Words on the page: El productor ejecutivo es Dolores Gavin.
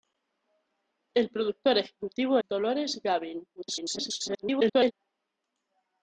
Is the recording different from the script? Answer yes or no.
yes